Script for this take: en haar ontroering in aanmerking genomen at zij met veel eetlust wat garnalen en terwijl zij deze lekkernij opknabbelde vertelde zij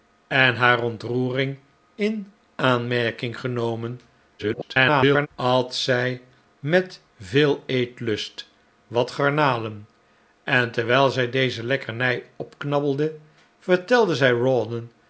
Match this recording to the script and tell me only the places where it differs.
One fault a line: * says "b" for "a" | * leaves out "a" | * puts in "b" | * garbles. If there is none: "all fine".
* garbles